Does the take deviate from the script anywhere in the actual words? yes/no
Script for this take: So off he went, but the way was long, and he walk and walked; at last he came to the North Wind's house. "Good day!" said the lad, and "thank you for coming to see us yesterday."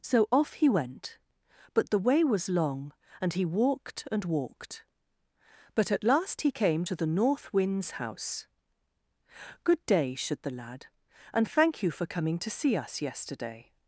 yes